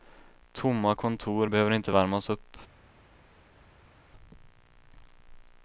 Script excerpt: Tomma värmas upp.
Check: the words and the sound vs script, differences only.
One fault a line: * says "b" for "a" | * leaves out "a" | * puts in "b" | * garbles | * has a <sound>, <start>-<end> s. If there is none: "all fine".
* puts in "kontor behöver inte"